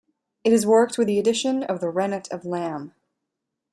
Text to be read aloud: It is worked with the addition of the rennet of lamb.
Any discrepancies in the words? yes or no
no